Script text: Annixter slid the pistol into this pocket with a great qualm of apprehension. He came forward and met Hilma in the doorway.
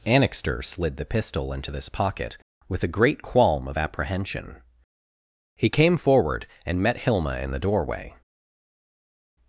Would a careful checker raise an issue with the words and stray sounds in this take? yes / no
no